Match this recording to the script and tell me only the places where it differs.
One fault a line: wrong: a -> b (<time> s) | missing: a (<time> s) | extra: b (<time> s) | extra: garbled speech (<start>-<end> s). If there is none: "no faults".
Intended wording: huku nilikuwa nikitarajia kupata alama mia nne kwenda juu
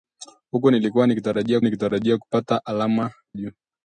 extra: nikitarajia (1.6 s)
missing: mia nne kwenda (3.1 s)